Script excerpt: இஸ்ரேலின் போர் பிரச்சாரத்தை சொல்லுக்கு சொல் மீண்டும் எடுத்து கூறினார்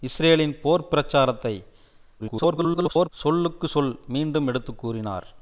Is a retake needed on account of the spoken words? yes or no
yes